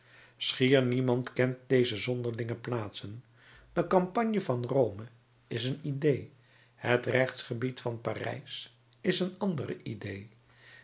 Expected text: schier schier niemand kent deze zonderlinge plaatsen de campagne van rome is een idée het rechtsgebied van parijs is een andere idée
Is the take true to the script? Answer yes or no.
no